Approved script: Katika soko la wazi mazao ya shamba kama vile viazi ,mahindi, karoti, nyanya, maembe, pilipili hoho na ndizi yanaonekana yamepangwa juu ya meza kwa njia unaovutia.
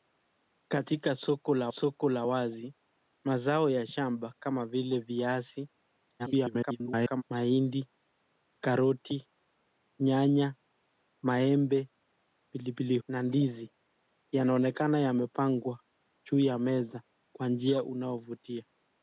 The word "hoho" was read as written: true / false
false